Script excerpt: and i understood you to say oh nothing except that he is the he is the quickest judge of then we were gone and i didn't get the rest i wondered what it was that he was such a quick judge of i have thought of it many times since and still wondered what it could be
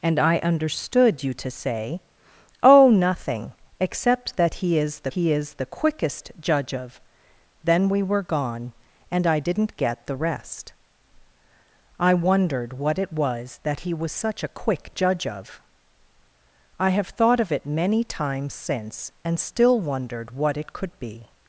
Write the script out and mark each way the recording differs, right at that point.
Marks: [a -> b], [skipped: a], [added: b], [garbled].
and i understood you to say oh nothing except that he is the he is the quickest judge of then we were gone and i didn't get the rest i wondered what it was that he was such a quick judge of i have thought of it many times since and still wondered what it could be